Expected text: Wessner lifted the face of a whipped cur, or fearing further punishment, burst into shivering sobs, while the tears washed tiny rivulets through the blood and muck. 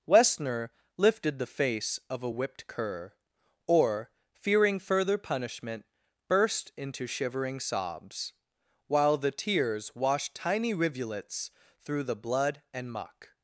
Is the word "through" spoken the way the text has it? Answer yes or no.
yes